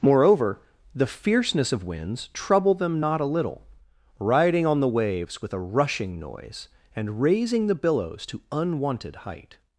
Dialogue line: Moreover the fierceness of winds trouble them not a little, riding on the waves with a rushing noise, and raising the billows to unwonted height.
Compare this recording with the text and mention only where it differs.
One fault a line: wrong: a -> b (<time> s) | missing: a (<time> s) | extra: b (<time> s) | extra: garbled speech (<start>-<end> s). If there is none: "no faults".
no faults